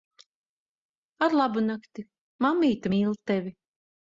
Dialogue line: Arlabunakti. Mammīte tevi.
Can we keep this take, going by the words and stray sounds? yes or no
no